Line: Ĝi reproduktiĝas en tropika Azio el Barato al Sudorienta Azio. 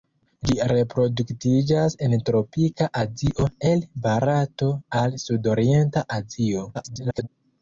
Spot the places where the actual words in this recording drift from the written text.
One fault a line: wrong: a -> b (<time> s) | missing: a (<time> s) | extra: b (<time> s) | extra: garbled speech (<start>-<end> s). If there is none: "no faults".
extra: garbled speech (6.7-7.3 s)